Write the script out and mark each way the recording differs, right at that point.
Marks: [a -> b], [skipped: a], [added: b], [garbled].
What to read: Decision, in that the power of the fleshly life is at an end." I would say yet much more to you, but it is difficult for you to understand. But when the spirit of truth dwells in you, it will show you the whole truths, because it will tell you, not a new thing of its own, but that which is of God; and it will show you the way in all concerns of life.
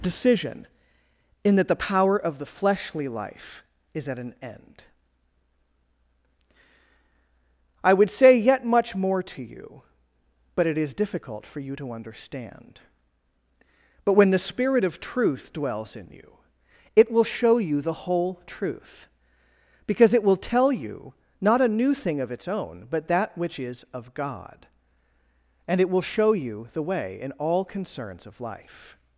Decision, in that the power of the fleshly life is at an end." I would say yet much more to you, but it is difficult for you to understand. But when the spirit of truth dwells in you, it will show you the whole [truths, -> truth] because it will tell you, not a new thing of its own, but that which is of God; and it will show you the way in all concerns of life.